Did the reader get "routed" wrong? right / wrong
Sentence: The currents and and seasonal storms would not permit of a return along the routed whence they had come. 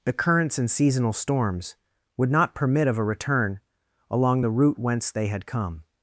wrong